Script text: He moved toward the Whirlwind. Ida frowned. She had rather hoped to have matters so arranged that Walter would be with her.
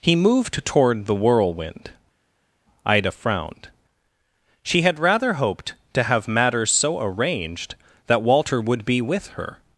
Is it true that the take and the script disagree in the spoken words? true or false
false